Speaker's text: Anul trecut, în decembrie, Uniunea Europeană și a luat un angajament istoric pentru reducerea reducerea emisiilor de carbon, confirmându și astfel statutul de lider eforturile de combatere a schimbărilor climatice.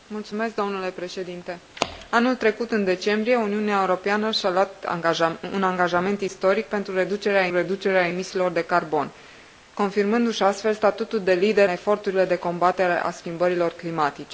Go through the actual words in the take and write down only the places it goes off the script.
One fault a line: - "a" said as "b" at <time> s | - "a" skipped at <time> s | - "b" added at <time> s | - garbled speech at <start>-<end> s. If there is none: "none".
none